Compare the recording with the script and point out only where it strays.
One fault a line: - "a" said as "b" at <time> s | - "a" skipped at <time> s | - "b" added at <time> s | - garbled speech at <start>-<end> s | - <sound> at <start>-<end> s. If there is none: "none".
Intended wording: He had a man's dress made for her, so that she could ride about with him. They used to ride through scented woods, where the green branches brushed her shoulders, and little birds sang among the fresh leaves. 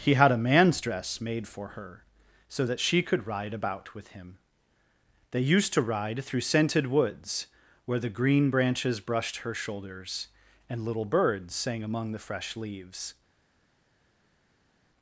none